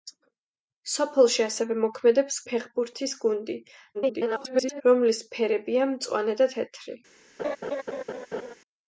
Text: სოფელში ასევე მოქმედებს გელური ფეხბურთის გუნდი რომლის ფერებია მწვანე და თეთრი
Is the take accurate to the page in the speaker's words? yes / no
no